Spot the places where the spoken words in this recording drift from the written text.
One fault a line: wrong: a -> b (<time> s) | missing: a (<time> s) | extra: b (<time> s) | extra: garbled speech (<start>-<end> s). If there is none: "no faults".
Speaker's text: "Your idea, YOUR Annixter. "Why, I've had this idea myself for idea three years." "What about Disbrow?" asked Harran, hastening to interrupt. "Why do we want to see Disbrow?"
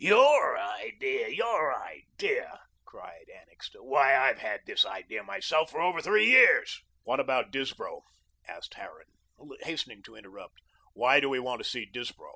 extra: idea cried (1.8 s)
wrong: idea -> over (5.8 s)